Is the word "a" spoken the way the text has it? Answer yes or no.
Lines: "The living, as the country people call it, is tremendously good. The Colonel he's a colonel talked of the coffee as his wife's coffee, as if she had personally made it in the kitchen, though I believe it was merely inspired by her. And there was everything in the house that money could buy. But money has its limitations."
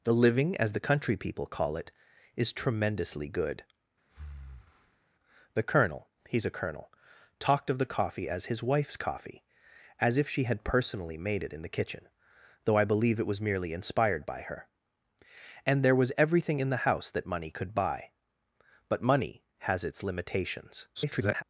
yes